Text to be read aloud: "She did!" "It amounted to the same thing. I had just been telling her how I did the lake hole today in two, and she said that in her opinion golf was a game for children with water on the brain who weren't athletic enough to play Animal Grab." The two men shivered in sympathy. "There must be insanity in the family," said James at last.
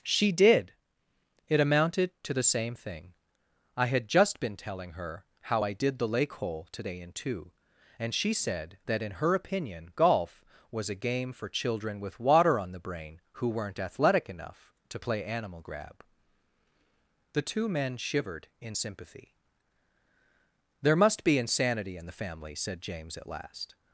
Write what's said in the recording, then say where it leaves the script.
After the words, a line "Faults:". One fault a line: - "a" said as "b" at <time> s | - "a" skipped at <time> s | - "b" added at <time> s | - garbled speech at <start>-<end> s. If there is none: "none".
"She did!" "It amounted to the same thing. I had just been telling her how I did the lake hole today in two, and she said that in her opinion golf was a game for children with water on the brain who weren't athletic enough to play Animal Grab." The two men shivered in sympathy. "There must be insanity in the family," said James at last.
Faults:
none